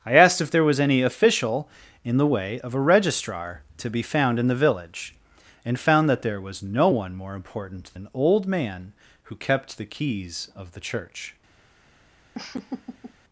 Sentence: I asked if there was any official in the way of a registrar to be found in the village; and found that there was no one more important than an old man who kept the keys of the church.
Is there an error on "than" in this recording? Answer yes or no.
yes